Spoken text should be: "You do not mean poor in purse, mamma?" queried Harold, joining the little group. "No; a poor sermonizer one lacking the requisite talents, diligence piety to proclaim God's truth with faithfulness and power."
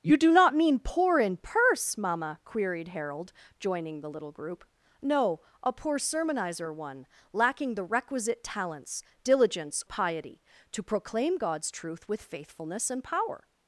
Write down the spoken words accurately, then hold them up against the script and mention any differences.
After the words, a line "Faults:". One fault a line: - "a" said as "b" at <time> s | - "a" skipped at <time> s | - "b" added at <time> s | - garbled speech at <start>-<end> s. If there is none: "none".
"You do not mean poor in purse, mamma?" queried Harold, joining the little group. "No; a poor sermonizer one lacking the requisite talents, diligence piety to proclaim God's truth with faithfulness and power."
Faults:
none